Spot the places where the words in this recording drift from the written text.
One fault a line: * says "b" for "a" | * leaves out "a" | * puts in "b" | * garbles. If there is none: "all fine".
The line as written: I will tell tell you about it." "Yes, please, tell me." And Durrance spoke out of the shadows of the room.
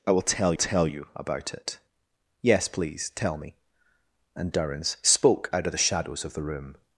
all fine